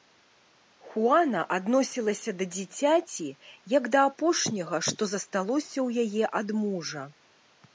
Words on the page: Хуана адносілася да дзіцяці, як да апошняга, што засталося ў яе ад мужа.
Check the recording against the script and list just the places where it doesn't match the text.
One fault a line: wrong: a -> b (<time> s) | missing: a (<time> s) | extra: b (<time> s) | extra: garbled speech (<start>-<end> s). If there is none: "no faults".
no faults